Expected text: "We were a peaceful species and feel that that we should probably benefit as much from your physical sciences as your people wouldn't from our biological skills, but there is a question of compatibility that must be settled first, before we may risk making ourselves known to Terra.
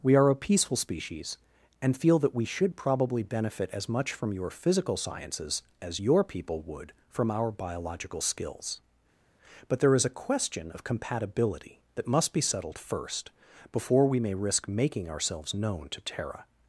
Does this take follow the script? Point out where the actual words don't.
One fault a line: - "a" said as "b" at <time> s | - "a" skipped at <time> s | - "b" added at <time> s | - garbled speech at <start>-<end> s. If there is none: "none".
- "were" said as "are" at 0.1 s
- "that" skipped at 2.3 s
- "wouldn't" said as "would" at 6.6 s